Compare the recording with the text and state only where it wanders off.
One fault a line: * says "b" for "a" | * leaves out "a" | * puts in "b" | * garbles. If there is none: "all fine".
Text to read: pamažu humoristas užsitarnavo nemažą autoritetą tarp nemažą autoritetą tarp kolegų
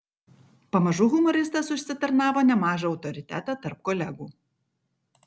* leaves out "nemažą autoritetą tarp"